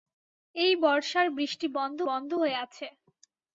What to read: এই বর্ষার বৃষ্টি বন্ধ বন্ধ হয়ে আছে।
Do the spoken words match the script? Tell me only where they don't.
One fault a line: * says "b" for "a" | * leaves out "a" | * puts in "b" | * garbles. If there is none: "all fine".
all fine